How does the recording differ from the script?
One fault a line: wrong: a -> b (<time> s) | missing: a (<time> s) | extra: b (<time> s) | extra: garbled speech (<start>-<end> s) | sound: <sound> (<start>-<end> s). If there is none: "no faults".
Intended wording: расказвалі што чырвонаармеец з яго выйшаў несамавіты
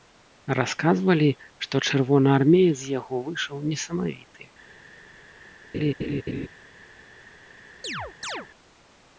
sound: laugh (5.7-6.5 s)
sound: chirp (7.8-8.5 s)